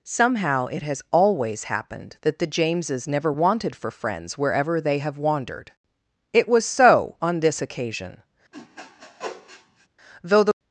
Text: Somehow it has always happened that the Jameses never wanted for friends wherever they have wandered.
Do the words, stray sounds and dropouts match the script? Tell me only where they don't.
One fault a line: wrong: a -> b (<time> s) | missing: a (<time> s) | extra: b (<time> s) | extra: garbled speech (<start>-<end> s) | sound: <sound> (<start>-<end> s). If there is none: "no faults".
extra: It was so on this occasion Though the (6.3 s)
sound: sniff (8.5-9.9 s)